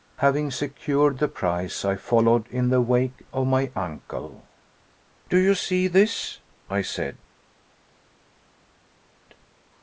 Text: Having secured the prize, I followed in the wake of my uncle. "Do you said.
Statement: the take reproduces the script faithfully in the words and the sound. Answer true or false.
false